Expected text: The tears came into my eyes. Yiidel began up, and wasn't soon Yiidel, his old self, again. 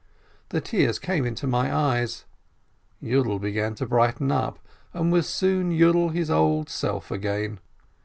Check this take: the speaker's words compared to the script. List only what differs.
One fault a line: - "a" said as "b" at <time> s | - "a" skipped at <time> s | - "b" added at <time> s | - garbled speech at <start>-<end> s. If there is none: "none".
- "to brighten" added at 3.8 s
- "wasn't" said as "was" at 5.1 s